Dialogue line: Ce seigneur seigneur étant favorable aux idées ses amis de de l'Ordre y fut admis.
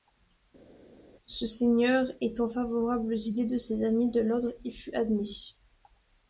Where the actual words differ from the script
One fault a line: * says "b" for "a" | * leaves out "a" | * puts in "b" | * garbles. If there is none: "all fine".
* leaves out "seigneur"
* puts in "de"
* leaves out "de"